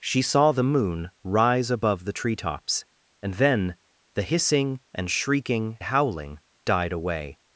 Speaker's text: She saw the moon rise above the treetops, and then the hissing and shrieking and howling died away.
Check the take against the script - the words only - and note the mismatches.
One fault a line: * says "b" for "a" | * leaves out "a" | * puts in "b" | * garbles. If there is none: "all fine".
* leaves out "and"